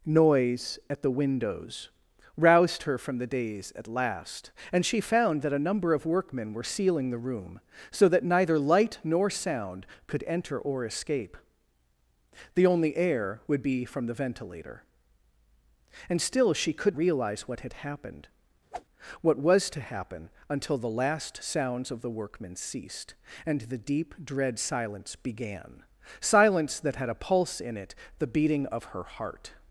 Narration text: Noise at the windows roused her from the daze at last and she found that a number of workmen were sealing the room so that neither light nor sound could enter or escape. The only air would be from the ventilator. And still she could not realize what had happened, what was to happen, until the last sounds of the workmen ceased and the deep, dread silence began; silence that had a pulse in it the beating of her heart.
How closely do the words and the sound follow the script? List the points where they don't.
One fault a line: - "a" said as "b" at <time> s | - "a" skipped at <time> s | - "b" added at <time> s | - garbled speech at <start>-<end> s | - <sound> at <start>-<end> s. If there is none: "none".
- "not" skipped at 17.0 s
- whoosh at 18.7-18.9 s